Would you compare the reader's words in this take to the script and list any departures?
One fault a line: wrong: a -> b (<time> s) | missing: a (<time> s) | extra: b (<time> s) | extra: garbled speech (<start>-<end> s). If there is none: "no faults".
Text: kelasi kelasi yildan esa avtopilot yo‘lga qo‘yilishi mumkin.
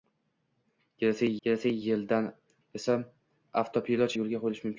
no faults